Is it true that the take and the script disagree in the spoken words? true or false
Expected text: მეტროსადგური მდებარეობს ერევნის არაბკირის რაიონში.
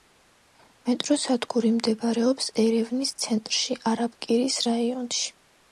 true